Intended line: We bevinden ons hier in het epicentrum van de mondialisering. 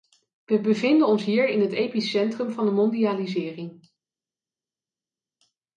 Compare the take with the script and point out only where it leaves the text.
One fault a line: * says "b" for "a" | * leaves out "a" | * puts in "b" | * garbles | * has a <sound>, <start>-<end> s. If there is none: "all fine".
all fine